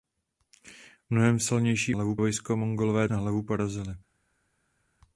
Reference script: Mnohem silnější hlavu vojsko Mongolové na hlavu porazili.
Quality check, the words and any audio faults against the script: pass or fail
pass